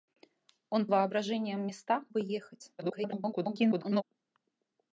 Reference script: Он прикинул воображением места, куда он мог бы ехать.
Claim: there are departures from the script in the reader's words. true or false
true